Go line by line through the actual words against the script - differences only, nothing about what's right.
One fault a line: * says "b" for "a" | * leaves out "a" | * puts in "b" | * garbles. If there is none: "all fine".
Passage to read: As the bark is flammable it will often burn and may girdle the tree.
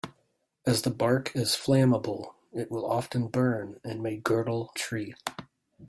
* leaves out "the"